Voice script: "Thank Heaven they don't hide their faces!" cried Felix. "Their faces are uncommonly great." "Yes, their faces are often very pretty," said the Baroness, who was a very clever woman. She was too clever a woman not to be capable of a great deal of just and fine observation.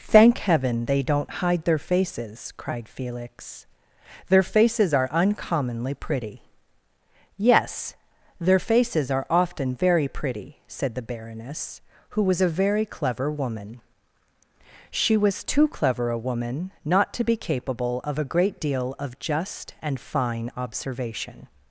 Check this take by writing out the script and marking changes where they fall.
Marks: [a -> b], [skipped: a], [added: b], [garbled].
"Thank Heaven they don't hide their faces!" cried Felix. "Their faces are uncommonly [great." -> pretty] "Yes, their faces are often very pretty," said the Baroness, who was a very clever woman. She was too clever a woman not to be capable of a great deal of just and fine observation.